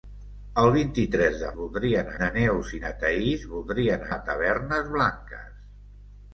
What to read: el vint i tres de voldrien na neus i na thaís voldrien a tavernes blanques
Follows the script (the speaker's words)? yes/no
yes